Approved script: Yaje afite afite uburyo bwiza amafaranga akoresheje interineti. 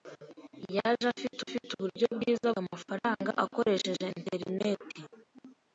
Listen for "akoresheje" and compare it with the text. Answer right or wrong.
right